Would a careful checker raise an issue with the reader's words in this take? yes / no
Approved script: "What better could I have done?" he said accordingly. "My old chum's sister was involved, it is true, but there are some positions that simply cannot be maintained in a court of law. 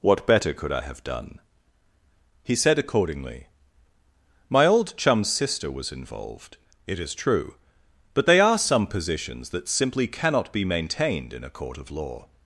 yes